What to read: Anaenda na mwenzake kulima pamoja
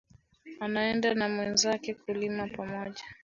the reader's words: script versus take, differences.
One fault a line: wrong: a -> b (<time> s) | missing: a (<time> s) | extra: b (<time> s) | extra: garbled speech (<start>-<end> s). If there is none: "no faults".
no faults